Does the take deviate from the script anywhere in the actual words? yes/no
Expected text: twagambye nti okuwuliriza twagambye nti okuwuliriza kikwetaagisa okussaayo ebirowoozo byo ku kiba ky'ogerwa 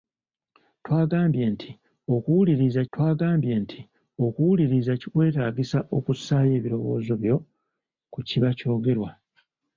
no